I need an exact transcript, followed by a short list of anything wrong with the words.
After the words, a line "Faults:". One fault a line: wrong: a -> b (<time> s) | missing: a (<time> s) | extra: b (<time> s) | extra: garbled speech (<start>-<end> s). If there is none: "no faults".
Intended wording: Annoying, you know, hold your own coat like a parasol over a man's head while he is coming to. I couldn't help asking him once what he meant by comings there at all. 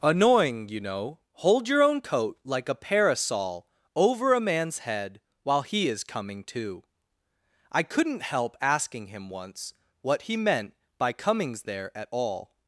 Annoying, you know, hold your own coat like a parasol over a man's head while he is coming to. I couldn't help asking him once what he meant by comings there at all.
Faults:
no faults